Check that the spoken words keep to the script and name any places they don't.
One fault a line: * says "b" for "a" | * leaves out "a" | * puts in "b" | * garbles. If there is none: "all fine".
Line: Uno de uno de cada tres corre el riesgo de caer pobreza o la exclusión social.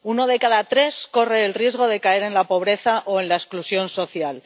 * leaves out "uno de"
* puts in "en la"
* puts in "en"